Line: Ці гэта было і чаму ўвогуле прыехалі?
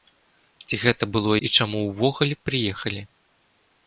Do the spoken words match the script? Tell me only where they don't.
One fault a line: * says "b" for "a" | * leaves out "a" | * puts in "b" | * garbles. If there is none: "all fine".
all fine